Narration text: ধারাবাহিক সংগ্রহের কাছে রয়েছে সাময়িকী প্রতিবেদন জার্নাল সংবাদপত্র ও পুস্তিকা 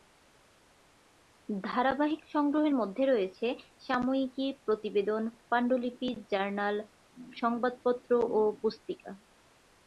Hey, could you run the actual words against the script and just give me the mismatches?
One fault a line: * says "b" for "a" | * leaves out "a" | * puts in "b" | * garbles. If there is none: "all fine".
* says "মধ্যে" for "কাছে"
* puts in "পাণ্ডুলিপি"